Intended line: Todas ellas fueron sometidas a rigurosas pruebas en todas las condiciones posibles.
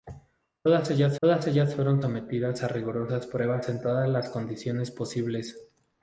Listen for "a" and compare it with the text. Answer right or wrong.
right